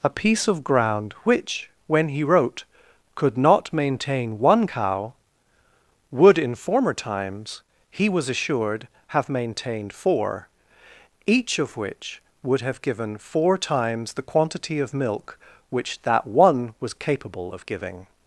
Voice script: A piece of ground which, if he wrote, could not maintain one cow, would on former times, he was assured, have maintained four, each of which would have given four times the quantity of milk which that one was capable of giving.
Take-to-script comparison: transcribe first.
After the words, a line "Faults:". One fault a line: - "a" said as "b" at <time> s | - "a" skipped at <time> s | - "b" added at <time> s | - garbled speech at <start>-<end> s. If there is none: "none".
A piece of ground which, when he wrote, could not maintain one cow, would in former times, he was assured, have maintained four, each of which would have given four times the quantity of milk which that one was capable of giving.
Faults:
- "if" said as "when" at 1.9 s
- "on" said as "in" at 6.4 s